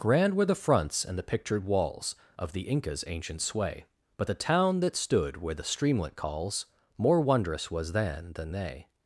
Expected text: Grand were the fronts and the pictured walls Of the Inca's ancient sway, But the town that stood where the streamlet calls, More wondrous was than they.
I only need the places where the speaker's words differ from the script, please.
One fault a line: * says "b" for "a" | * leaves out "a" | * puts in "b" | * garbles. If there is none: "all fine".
* puts in "than"